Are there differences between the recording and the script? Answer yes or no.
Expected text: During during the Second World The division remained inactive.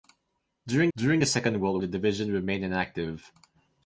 no